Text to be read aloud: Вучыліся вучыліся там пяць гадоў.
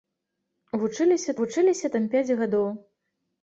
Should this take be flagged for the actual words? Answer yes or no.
no